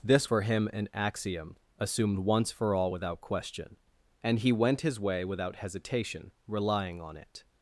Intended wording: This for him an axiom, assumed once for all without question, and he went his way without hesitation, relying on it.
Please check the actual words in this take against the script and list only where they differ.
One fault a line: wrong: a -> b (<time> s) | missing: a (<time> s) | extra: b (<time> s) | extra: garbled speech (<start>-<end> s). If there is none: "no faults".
no faults